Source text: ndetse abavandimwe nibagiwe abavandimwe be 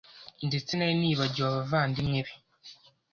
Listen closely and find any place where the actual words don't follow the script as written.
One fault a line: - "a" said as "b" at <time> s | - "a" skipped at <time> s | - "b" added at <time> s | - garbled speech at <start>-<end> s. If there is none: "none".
- "abavandimwe" said as "nari" at 0.7 s